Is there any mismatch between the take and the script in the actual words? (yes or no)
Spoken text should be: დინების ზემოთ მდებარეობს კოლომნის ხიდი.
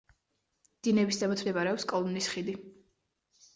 no